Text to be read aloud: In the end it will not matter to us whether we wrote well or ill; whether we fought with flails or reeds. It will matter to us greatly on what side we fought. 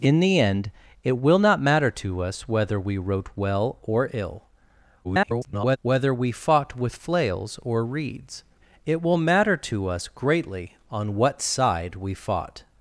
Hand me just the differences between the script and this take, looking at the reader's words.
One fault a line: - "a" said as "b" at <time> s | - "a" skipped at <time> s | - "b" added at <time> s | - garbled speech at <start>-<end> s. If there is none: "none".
- garbled speech at 5.0-5.8 s